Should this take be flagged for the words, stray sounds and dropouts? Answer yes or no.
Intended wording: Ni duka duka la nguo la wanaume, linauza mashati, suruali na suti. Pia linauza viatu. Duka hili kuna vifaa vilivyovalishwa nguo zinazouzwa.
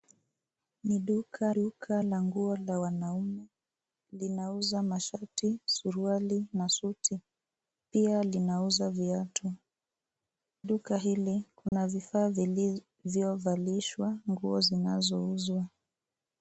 yes